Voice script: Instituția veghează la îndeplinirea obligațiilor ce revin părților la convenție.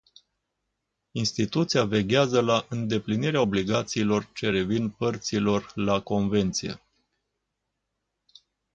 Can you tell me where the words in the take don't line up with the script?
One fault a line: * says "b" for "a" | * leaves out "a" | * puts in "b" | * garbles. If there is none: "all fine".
all fine